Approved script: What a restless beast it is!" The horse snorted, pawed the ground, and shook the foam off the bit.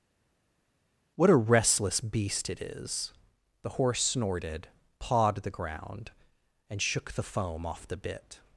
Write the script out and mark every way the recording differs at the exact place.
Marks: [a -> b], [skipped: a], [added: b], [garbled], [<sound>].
What a restless beast it is!" The horse snorted, pawed the ground, and shook the foam off the bit.